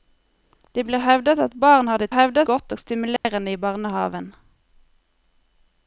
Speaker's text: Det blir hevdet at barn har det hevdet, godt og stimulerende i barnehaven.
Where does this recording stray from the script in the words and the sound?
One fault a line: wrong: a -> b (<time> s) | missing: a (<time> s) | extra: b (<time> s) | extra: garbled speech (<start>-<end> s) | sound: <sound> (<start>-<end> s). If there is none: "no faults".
sound: dropout (3.2-3.2 s)